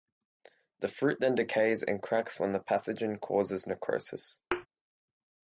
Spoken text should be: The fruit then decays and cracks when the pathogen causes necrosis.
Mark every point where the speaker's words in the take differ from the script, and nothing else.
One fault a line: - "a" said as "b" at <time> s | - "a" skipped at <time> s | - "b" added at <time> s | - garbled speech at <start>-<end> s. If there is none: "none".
none